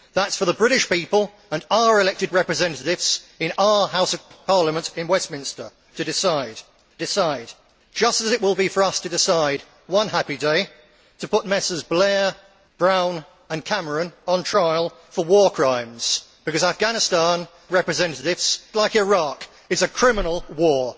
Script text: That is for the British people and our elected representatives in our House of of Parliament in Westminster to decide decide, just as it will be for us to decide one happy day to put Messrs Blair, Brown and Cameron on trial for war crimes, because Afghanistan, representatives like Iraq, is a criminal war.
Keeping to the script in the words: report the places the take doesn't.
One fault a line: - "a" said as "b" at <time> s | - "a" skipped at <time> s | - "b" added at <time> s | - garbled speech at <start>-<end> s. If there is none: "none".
none